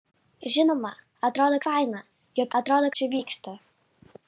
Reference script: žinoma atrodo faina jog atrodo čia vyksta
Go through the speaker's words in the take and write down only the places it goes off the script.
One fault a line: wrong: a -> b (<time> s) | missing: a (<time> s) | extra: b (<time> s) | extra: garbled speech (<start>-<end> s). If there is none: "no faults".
no faults